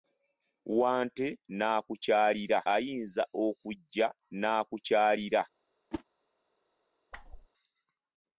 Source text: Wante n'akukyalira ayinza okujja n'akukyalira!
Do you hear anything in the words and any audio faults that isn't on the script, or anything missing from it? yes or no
yes